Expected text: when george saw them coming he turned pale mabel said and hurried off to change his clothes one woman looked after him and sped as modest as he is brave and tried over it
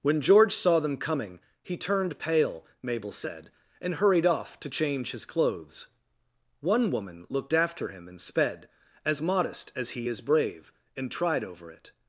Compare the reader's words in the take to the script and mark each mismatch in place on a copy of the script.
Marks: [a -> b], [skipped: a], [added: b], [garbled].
when george saw them coming he turned pale mabel said and hurried off to change his clothes one woman looked after him and sped as modest as he is brave and tried over it